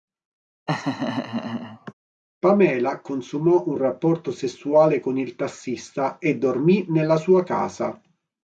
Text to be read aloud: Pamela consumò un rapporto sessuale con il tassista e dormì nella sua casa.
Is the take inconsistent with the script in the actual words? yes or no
no